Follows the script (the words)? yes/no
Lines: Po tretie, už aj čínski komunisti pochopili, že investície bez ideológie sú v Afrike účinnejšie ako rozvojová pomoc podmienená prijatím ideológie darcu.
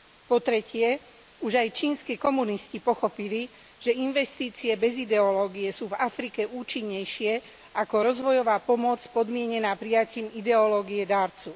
yes